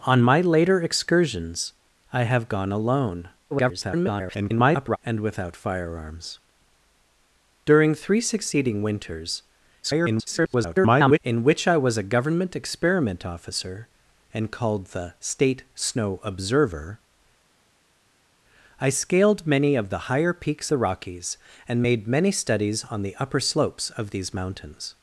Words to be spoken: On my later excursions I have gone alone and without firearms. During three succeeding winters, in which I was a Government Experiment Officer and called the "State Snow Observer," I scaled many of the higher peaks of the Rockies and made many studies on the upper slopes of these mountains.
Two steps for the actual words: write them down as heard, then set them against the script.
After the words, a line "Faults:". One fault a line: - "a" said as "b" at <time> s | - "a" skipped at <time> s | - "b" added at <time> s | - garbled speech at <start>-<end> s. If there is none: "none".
On my later excursions I have gone alone [garbled] and without firearms. During three succeeding winters, [garbled] in which I was a Government Experiment Officer and called the "State Snow Observer," I scaled many of the higher peaks the Rockies and made many studies on the upper slopes of these mountains.
Faults:
- garbled speech at 3.5-5.0 s
- garbled speech at 9.8-11.2 s
- "of" skipped at 20.7 s